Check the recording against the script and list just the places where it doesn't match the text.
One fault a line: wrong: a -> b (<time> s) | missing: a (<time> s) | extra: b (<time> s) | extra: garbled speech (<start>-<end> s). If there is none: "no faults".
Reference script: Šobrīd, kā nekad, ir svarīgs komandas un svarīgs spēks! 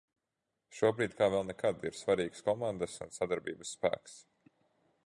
extra: vēl (1.3 s)
wrong: svarīgs -> sadarbības (3.2 s)